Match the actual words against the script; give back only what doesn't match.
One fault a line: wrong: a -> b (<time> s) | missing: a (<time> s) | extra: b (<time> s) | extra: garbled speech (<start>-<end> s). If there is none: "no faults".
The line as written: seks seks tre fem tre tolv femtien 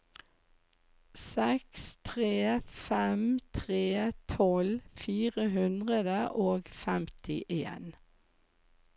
missing: seks (1.8 s)
extra: fire hundre og (5.1 s)